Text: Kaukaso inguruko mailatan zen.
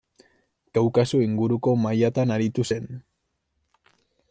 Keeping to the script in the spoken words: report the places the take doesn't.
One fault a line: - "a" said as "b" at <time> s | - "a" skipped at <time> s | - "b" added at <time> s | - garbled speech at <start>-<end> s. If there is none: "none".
- "aritu" added at 2.4 s